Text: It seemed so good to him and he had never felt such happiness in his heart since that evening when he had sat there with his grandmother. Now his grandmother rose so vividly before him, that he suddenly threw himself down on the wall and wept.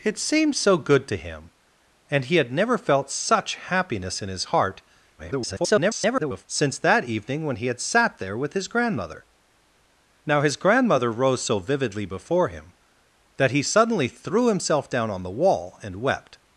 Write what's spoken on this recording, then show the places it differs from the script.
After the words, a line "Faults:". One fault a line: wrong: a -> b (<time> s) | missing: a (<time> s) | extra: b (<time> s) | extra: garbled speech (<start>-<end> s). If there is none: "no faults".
It seemed so good to him and he had never felt such happiness in his heart [garbled] since that evening when he had sat there with his grandmother. Now his grandmother rose so vividly before him, that he suddenly threw himself down on the wall and wept.
Faults:
extra: garbled speech (5.2-6.4 s)